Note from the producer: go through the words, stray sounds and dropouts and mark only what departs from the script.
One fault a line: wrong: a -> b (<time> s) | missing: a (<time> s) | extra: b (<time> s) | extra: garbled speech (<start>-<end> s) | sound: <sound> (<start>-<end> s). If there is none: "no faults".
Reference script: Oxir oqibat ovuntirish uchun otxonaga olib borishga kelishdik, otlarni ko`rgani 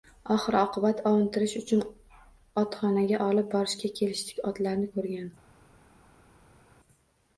no faults